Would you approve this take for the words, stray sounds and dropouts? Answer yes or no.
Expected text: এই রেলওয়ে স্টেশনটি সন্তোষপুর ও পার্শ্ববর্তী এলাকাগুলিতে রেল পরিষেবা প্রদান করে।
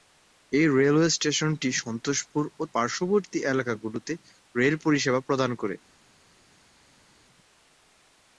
yes